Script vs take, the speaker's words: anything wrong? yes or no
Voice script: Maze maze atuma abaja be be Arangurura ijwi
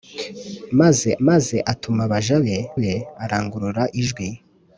no